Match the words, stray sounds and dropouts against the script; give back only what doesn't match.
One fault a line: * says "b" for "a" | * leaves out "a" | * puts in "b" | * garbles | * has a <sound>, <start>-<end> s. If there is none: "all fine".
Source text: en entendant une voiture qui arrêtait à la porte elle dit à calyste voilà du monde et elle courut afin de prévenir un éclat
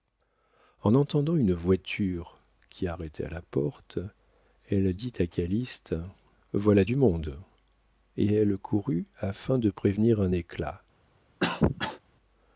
* has a cough, 11.4-12.0 s